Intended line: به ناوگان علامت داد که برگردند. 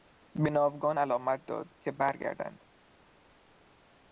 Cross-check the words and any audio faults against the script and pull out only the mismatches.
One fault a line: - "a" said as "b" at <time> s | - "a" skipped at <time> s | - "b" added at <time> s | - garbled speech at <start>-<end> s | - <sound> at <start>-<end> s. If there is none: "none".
none